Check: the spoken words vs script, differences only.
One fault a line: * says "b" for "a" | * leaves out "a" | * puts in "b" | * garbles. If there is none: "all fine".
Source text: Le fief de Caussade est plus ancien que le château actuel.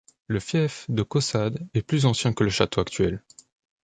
all fine